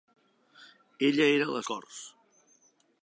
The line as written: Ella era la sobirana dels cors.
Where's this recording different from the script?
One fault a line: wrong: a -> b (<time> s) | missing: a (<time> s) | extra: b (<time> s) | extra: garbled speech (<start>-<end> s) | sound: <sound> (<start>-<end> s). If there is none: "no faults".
missing: sobirana dels (1.6 s)